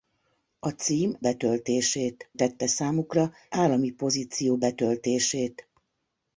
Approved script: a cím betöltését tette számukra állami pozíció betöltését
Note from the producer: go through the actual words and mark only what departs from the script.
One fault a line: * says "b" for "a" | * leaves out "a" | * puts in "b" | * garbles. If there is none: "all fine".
all fine